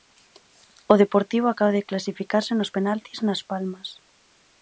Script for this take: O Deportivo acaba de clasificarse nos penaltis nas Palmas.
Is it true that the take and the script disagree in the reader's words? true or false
false